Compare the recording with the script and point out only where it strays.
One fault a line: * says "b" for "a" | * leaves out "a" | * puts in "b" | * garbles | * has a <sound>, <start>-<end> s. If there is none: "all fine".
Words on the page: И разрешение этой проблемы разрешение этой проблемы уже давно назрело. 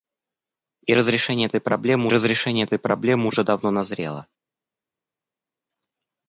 all fine